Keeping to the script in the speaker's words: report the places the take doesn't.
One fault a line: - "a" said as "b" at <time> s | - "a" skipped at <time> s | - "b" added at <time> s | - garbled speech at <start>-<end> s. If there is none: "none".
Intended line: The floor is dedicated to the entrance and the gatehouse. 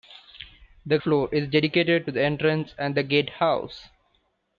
none